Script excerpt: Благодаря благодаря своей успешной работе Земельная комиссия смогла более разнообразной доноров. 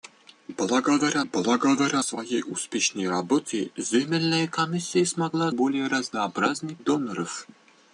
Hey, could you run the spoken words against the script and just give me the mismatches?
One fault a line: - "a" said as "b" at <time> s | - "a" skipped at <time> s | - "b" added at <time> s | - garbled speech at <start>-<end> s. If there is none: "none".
none